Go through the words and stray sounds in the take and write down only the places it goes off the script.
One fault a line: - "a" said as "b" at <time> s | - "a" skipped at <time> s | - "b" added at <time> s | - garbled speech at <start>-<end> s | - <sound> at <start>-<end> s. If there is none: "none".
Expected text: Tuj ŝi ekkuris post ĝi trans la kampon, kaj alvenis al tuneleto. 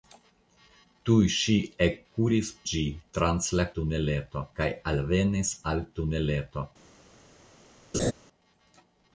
- "post" skipped at 2.5 s
- "kampon" said as "tuneleto" at 3.8 s
- laugh at 7.9-8.1 s